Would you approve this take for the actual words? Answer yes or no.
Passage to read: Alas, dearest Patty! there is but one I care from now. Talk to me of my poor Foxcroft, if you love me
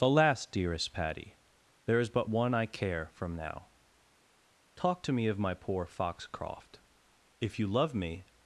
yes